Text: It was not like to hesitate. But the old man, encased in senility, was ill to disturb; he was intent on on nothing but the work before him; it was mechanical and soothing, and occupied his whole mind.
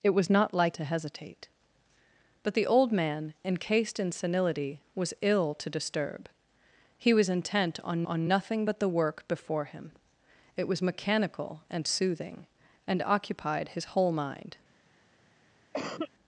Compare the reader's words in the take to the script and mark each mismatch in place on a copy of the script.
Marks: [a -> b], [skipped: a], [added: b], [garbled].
It was not like to hesitate. But the old man, encased in senility, was ill to disturb; he was intent on on nothing but the work before him; it was mechanical and soothing, and occupied his whole mind.